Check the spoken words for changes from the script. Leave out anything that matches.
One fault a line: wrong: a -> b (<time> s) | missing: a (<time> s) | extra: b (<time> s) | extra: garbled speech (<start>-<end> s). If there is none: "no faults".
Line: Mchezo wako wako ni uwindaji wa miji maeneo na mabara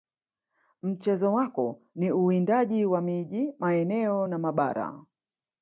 missing: wako (1.8 s)